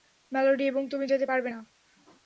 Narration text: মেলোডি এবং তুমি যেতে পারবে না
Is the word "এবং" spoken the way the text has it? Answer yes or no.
yes